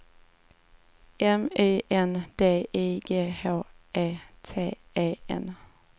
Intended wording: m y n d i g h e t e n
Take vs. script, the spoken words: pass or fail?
pass